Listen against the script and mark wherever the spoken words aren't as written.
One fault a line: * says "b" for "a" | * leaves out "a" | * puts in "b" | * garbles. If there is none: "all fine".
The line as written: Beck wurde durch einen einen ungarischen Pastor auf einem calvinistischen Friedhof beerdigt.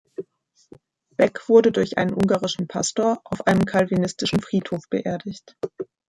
* leaves out "einen"